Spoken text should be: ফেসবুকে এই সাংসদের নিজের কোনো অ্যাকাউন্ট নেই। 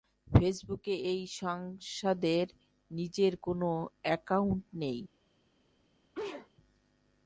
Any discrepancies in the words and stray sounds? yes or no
yes